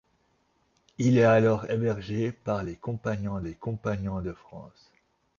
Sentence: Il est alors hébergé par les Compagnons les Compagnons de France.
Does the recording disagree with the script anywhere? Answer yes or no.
no